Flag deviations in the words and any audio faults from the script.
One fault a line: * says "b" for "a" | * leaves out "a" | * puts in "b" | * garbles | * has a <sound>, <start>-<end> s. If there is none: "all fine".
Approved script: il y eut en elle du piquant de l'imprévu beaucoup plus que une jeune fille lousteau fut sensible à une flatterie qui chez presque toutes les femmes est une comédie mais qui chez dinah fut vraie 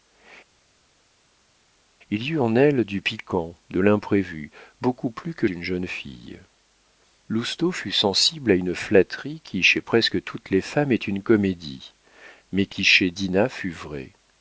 all fine